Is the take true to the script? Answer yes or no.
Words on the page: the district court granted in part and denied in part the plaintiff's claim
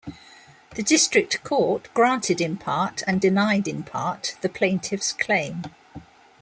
yes